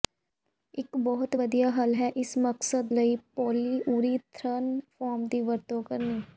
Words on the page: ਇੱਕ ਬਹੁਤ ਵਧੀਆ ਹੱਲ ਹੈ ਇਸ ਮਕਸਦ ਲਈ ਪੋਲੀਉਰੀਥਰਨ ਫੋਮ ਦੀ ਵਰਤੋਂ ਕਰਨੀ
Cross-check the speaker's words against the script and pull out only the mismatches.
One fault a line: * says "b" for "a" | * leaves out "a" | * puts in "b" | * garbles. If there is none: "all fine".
all fine